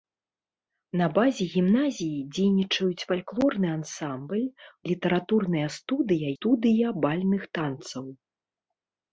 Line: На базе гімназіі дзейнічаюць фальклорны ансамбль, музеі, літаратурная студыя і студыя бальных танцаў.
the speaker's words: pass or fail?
fail